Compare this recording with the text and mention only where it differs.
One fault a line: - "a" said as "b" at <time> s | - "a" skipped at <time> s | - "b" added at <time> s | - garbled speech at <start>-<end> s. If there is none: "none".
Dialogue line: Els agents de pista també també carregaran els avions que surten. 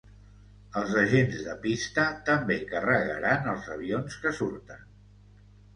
- "també" skipped at 2.6 s